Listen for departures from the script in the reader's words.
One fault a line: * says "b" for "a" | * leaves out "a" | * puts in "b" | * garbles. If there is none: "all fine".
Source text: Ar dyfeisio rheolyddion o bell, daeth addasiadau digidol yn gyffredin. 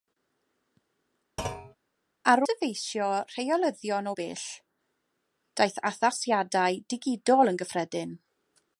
all fine